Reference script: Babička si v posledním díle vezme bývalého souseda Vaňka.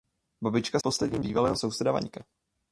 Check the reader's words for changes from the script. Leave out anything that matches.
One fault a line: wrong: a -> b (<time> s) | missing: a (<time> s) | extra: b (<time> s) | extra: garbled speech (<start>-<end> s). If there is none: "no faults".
missing: si (0.8 s)
missing: díle vezme (1.2 s)